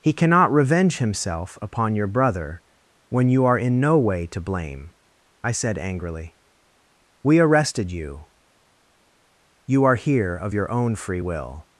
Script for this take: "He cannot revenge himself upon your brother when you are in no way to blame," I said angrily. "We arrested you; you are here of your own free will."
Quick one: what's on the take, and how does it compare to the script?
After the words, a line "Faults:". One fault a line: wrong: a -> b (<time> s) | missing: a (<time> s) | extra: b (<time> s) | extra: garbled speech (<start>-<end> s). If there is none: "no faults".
"He cannot revenge himself upon your brother when you are in no way to blame," I said angrily. "We arrested you; you are here of your own free will."
Faults:
no faults